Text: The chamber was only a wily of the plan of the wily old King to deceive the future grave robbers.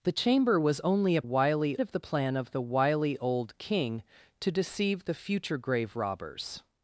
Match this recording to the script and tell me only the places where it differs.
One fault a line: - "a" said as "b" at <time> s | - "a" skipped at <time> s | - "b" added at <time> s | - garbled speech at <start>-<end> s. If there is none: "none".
none